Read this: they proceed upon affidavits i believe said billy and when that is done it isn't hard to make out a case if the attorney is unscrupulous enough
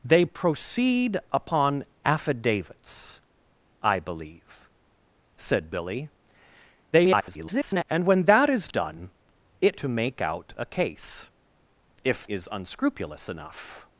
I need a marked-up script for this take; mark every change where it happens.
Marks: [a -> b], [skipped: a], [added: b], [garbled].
they proceed upon affidavits i believe said billy [garbled] and when that is done it [skipped: isn't hard] to make out a case if [skipped: the attorney] is unscrupulous enough